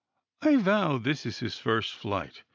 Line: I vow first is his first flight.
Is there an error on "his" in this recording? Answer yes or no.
no